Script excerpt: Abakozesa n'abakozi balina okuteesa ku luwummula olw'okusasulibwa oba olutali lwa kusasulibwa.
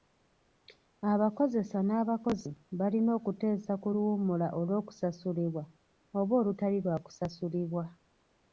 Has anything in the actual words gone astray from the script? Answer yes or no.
no